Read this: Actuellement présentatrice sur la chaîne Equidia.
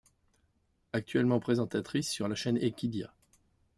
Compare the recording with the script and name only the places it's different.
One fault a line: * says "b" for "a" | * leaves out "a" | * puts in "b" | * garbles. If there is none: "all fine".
all fine